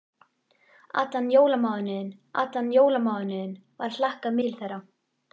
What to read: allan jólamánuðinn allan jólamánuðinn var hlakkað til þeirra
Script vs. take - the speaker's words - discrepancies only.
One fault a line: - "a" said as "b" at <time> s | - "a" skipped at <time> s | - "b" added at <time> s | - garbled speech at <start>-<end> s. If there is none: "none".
none